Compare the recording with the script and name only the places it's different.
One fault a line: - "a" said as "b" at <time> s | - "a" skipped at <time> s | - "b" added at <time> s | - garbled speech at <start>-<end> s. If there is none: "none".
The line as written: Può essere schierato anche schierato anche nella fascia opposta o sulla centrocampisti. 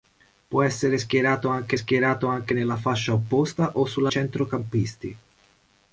none